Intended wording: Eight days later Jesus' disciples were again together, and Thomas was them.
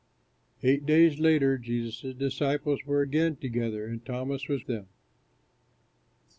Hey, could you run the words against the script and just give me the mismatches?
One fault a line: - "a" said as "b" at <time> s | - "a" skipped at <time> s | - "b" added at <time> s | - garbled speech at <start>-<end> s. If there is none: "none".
none